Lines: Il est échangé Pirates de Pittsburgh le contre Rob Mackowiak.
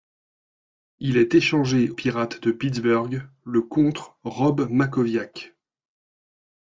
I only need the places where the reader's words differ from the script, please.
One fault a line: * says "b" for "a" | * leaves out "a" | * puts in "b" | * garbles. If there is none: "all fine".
all fine